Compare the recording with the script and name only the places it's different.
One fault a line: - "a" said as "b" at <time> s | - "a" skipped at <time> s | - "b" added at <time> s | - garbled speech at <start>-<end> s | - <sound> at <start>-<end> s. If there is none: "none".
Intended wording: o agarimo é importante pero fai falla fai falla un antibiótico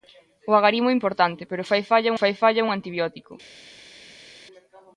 none